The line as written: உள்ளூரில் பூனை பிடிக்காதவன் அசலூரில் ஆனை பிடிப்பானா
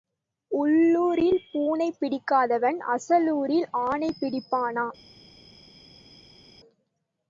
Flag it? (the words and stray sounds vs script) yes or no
no